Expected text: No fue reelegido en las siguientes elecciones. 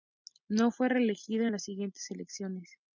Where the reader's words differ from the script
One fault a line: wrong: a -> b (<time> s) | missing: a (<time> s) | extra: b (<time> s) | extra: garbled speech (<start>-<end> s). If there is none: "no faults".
no faults